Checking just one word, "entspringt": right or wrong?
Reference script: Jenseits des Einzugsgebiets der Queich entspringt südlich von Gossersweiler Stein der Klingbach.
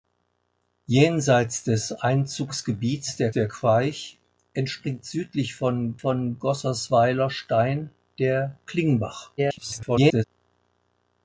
right